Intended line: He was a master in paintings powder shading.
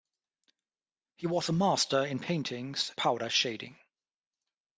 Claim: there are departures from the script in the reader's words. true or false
false